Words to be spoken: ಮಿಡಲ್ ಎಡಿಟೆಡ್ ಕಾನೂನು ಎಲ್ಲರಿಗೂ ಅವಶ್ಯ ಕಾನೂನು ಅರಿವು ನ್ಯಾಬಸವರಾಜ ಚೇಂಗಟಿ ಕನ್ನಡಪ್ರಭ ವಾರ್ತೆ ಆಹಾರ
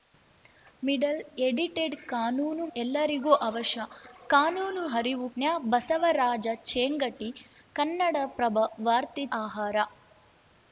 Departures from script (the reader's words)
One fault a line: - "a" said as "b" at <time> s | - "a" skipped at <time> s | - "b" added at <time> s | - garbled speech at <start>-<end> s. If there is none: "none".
none